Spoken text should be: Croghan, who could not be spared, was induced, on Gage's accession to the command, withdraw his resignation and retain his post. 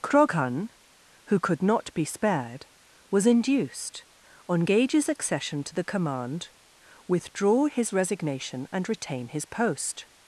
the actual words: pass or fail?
pass